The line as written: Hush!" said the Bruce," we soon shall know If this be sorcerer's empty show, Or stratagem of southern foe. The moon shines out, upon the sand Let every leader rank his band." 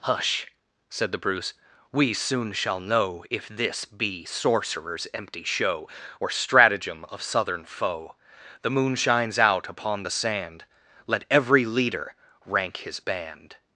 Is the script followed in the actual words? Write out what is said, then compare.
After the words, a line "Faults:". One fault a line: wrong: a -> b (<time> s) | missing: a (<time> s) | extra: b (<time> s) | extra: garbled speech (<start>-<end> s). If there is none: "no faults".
Hush!" said the Bruce," we soon shall know If this be sorcerer's empty show, Or stratagem of southern foe. The moon shines out, upon the sand Let every leader rank his band."
Faults:
no faults